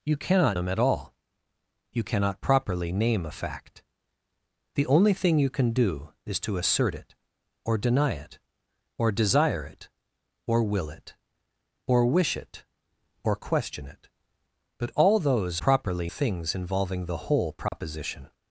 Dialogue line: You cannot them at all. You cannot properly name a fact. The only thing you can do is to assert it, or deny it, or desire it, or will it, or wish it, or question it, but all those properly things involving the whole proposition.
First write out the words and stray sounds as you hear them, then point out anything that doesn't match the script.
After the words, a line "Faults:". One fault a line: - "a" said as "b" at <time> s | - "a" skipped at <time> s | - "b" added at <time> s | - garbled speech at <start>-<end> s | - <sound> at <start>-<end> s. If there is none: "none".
You cannot them at all. You cannot properly name a fact. The only thing you can do is to assert it, or deny it, or desire it, or will it, or wish it, or question it, but all those properly things involving the whole proposition.
Faults:
- dropout at 17.7-17.7 s